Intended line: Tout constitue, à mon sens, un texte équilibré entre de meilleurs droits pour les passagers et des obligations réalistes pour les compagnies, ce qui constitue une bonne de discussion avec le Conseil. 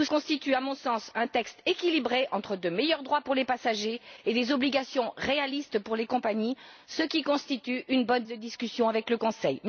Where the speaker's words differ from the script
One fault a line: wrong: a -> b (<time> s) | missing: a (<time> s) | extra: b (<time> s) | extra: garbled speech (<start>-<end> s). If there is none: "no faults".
no faults